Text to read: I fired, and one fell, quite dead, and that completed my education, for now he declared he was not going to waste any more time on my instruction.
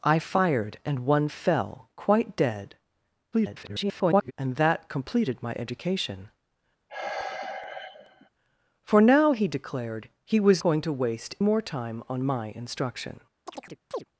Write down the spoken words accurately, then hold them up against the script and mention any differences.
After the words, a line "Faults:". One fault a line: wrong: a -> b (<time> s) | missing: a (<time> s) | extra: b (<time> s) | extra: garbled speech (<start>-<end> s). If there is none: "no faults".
I fired, and one fell, quite dead, [garbled] and that completed my education, for now he declared he was going to waste more time on my instruction.
Faults:
extra: garbled speech (3.3-4.3 s)
missing: not (10.6 s)
missing: any (11.4 s)